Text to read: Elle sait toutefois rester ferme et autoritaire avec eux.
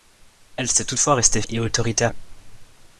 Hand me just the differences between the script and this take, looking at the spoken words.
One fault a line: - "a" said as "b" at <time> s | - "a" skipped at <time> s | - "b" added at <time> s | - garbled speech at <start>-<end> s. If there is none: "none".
- "ferme" skipped at 1.4 s
- "avec" skipped at 2.1 s